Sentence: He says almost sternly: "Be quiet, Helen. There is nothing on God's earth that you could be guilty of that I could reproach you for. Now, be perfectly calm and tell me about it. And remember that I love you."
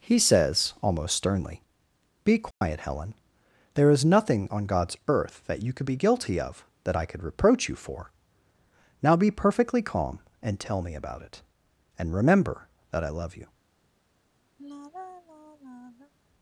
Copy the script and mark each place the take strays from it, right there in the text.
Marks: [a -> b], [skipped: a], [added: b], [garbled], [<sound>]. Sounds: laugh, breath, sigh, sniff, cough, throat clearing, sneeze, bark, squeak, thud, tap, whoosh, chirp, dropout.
He says almost sternly: "Be quiet, [dropout] Helen. There is nothing on God's earth that you could be guilty of that I could reproach you for. Now, be perfectly calm and tell me about it. And remember that I love you." [sigh]